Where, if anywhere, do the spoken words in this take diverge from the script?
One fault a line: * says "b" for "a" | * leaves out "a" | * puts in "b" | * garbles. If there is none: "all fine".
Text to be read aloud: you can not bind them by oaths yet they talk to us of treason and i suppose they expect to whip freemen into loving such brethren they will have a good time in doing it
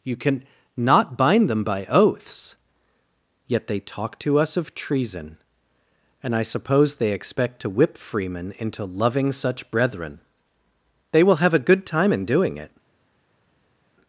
all fine